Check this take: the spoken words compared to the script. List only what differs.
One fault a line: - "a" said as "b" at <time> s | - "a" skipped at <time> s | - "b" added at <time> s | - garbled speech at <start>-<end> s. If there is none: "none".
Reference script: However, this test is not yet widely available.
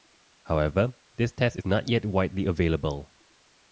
none